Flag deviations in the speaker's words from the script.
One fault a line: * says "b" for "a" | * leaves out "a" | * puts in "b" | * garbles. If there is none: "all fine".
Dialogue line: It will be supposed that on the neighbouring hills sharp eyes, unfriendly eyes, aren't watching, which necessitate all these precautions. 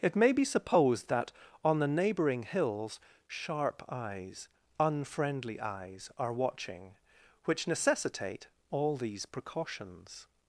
* says "may" for "will"
* says "are" for "aren't"